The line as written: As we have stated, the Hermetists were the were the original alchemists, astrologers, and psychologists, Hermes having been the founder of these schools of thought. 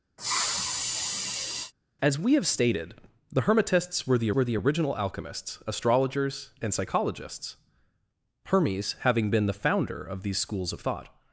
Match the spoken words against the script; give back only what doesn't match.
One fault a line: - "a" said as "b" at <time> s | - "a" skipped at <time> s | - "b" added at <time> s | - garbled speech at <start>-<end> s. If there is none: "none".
none